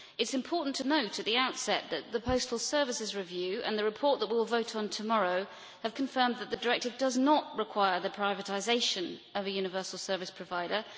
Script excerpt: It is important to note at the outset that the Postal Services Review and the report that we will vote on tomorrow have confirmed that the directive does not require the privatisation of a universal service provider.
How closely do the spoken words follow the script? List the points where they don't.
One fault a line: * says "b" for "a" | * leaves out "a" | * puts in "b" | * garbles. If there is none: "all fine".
all fine